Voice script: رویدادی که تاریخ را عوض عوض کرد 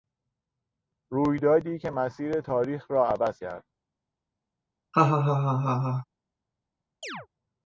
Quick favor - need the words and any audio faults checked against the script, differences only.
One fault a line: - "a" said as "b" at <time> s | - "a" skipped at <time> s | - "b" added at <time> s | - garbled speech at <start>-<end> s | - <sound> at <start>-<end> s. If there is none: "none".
- "مسیر" added at 1.9 s
- "عوض" skipped at 3.4 s
- laugh at 4.9-6.1 s
- chirp at 7.0-7.3 s